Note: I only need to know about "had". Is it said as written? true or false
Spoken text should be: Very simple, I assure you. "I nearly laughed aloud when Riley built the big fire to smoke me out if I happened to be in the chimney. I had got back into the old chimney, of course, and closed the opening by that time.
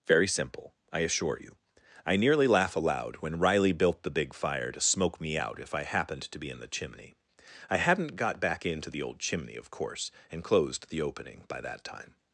false